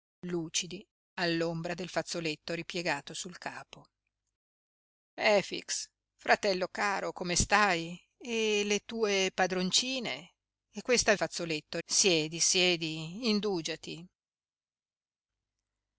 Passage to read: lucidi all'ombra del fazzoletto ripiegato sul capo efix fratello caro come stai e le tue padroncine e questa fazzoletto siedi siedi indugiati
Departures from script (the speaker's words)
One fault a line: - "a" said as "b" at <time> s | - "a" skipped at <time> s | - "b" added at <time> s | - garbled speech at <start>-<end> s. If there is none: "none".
none